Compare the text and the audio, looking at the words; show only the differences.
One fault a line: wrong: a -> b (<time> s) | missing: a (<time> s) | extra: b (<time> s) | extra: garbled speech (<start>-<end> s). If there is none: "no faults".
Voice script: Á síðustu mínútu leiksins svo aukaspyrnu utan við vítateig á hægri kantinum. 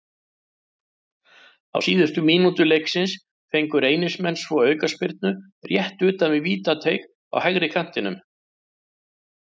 extra: fengu Reynismenn (3.5 s)
extra: rétt (5.7 s)